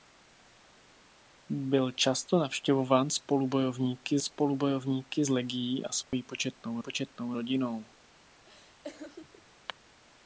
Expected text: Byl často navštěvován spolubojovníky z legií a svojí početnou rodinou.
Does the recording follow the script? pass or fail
fail